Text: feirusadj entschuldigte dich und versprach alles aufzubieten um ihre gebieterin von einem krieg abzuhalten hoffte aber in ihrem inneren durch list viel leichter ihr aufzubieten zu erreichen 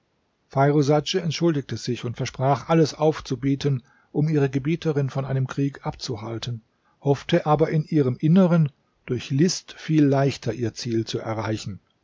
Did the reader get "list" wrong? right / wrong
right